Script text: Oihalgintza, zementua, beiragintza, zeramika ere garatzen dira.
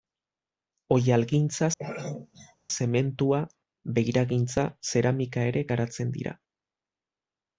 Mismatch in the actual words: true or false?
false